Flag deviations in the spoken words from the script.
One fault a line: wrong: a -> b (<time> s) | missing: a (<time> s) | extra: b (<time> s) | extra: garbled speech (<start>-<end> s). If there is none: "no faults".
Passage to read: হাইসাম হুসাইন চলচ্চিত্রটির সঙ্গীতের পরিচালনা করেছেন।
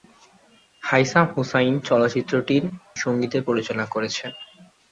no faults